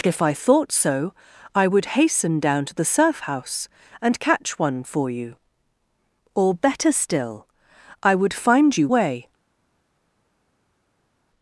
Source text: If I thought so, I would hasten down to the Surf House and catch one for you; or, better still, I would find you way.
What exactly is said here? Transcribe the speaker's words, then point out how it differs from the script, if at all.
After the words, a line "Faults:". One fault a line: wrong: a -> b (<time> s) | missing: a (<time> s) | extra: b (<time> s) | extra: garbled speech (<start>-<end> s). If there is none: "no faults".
If I thought so, I would hasten down to the Surf House and catch one for you; or, better still, I would find you way.
Faults:
no faults